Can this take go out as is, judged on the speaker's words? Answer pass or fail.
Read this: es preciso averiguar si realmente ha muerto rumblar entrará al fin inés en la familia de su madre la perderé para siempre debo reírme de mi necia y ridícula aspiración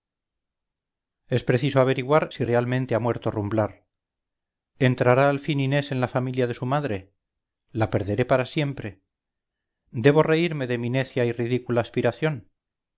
pass